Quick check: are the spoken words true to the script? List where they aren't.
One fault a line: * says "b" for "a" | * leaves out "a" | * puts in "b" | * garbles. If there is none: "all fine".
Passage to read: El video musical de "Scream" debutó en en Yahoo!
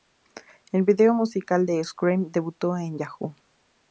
* leaves out "en"